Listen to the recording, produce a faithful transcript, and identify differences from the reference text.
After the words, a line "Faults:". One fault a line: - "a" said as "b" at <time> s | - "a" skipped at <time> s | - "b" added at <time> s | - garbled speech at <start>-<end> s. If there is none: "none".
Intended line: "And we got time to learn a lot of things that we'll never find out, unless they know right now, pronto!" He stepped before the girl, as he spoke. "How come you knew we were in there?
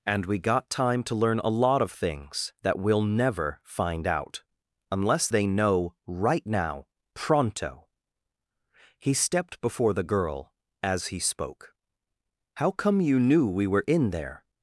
"And we got time to learn a lot of things that we'll never find out, unless they know right now, pronto!" He stepped before the girl, as he spoke. "How come you knew we were in there?
Faults:
none